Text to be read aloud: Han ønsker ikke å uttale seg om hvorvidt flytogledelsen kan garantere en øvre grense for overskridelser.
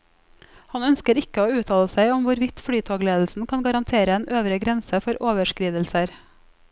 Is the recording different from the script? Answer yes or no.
no